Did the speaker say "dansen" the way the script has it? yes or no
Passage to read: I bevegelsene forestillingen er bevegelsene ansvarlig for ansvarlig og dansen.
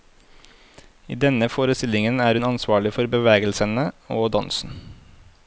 yes